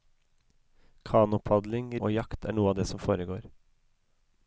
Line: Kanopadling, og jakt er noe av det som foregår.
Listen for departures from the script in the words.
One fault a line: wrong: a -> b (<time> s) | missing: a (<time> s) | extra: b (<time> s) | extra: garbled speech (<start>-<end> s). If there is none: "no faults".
no faults